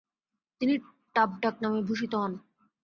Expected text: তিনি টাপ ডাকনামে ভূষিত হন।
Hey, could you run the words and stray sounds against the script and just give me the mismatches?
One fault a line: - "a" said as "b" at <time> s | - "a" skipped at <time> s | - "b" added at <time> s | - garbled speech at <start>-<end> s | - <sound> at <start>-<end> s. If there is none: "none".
none